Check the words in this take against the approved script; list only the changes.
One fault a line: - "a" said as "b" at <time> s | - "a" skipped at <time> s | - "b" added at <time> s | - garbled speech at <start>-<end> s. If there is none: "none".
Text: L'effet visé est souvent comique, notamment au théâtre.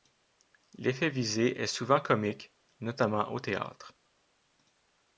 none